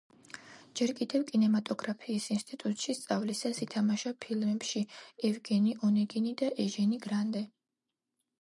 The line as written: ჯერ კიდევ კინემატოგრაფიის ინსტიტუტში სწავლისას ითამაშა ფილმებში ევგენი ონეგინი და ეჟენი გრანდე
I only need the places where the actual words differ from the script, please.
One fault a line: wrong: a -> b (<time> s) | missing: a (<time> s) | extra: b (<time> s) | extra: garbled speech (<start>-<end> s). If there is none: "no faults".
no faults